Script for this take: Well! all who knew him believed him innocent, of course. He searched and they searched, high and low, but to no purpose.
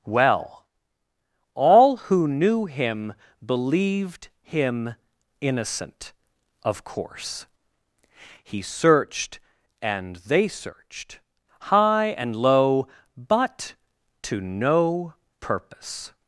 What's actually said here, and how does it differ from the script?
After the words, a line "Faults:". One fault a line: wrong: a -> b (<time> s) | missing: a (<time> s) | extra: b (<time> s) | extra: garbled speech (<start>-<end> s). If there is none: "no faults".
Well! all who knew him believed him innocent, of course. He searched and they searched, high and low, but to no purpose.
Faults:
no faults